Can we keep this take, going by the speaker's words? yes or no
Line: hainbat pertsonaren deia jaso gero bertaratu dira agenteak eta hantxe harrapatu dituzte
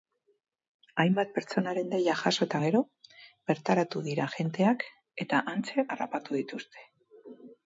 no